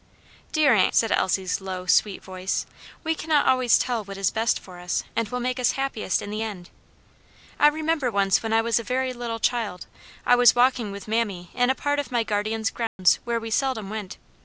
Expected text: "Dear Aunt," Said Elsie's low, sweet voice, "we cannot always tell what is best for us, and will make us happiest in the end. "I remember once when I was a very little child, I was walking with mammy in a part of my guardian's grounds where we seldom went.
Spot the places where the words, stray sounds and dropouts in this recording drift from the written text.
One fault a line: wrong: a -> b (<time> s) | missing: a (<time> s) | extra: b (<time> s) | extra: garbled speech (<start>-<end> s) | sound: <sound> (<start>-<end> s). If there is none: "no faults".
sound: dropout (12.9-13.0 s)